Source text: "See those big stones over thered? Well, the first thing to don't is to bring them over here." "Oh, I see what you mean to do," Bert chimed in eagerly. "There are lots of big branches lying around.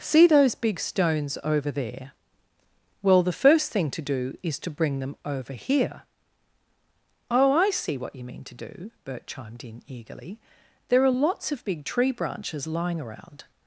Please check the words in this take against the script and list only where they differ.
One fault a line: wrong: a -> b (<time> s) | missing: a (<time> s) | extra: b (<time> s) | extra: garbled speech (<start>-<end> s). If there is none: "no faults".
wrong: thered -> there (1.7 s)
wrong: don't -> do (4.0 s)
extra: tree (11.8 s)